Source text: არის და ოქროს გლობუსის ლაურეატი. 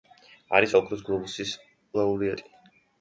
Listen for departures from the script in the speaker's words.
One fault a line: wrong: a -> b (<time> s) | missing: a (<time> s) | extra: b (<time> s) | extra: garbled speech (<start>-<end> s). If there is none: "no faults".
no faults